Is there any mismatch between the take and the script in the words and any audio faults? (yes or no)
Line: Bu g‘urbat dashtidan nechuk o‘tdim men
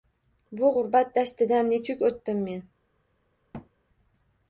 yes